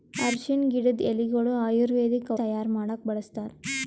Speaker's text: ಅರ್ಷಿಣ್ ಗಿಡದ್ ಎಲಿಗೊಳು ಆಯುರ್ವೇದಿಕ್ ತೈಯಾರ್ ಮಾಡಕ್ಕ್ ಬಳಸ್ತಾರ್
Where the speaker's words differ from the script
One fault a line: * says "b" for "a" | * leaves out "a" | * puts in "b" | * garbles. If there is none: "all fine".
all fine